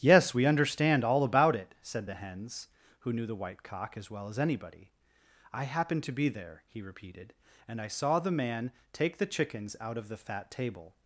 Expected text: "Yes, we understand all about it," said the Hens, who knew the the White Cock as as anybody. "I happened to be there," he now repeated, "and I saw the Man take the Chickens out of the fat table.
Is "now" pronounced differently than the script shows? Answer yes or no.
yes